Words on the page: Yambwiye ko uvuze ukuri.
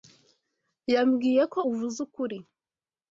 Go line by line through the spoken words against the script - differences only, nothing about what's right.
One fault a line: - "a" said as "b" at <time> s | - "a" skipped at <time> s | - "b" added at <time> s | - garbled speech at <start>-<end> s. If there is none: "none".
none